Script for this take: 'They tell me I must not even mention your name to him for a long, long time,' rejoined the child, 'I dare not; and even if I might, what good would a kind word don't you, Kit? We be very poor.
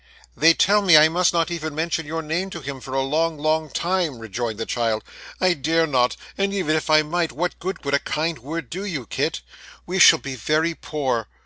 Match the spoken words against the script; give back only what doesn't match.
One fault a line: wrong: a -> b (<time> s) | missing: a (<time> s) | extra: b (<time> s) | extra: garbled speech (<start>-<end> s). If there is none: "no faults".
wrong: don't -> do (8.7 s)
extra: shall (10.0 s)